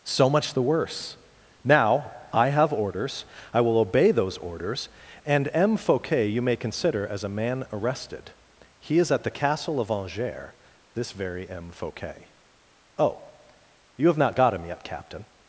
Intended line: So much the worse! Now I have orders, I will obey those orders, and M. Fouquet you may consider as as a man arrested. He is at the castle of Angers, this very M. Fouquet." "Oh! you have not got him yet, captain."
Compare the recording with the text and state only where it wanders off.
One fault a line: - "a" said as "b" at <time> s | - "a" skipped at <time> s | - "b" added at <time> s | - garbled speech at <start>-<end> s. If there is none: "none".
- "as" skipped at 7.2 s